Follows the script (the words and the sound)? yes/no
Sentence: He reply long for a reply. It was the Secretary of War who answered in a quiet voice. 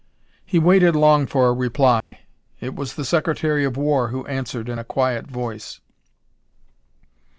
no